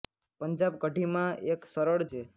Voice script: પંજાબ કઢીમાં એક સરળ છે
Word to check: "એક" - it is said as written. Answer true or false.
true